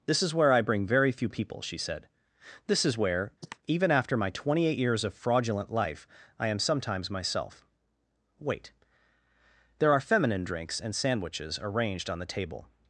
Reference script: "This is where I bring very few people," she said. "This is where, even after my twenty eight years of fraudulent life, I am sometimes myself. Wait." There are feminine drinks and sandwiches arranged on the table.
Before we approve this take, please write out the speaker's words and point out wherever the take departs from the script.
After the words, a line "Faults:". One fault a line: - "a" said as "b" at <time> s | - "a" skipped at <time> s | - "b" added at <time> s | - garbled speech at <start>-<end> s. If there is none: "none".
"This is where I bring very few people," she said. "This is where, even after my twenty eight years of fraudulent life, I am sometimes myself. Wait." There are feminine drinks and sandwiches arranged on the table.
Faults:
none